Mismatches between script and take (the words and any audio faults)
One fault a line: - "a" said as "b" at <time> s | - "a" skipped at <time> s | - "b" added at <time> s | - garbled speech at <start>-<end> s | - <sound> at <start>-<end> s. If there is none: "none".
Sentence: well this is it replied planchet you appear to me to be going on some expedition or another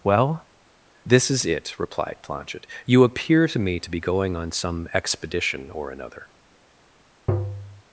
- tap at 7.3-7.8 s